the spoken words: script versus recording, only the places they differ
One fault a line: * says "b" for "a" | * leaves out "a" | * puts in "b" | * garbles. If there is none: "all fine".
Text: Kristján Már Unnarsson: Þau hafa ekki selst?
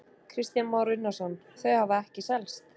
all fine